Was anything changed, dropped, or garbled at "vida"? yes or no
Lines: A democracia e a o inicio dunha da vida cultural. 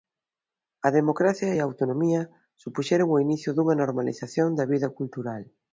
no